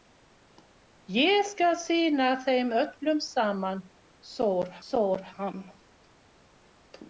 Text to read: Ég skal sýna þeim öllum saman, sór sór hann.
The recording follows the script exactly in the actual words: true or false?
true